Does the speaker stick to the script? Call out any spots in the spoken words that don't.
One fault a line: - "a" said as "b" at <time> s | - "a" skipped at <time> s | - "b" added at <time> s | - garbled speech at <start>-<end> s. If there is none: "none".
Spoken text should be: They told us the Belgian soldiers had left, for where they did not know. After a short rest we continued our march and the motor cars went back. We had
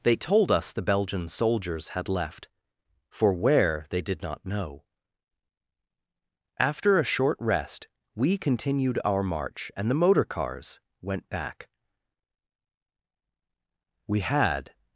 none